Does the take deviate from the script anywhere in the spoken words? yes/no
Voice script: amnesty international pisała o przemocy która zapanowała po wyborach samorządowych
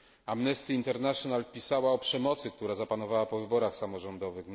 no